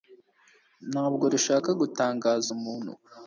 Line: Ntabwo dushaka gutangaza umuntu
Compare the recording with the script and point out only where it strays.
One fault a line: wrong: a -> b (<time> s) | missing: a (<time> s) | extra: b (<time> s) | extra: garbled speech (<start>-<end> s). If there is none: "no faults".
no faults